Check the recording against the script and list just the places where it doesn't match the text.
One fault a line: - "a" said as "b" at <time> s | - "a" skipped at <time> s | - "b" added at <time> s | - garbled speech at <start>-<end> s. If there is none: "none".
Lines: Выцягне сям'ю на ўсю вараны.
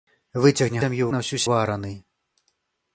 none